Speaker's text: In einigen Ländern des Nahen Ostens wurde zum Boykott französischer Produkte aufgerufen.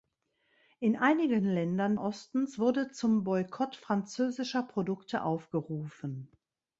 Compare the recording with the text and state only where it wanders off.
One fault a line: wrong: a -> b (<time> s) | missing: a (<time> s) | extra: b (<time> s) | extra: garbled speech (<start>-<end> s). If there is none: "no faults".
missing: des Nahen (1.9 s)